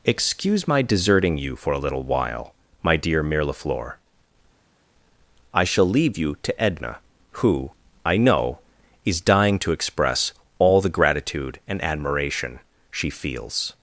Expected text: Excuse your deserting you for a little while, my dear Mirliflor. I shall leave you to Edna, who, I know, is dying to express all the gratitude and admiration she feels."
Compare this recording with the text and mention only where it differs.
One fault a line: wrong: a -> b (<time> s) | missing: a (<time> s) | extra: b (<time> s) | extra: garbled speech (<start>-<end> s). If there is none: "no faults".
wrong: your -> my (0.7 s)